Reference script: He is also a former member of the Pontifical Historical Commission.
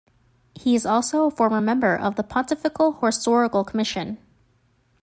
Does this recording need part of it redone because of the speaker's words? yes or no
no